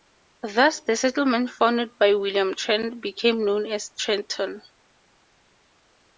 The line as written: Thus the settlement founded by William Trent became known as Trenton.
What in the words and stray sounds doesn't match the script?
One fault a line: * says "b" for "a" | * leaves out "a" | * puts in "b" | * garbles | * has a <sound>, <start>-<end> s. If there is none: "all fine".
all fine